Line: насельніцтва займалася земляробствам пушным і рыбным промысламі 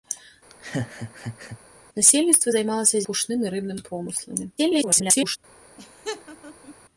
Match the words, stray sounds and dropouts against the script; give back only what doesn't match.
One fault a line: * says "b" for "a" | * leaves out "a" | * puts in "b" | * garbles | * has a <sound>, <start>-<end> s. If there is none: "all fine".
* has a laugh, 0.5-1.6 s
* leaves out "земляробствам"
* garbles
* has a laugh, 5.8-6.7 s